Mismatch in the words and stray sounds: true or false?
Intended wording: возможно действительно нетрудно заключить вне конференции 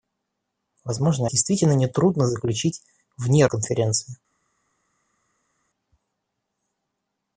false